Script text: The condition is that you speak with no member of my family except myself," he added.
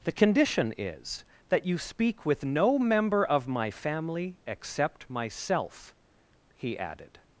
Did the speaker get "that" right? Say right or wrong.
right